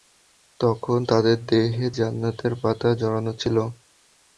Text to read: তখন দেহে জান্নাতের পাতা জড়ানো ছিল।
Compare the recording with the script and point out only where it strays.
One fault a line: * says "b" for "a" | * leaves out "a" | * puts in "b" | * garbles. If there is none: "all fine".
* puts in "তাদের"